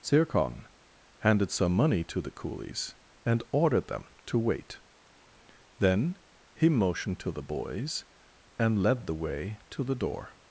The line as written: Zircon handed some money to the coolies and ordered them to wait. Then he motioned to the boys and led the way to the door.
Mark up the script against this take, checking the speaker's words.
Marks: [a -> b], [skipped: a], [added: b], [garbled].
Zircon handed some money to the coolies and ordered them to wait. Then he motioned to the boys and led the way to the door.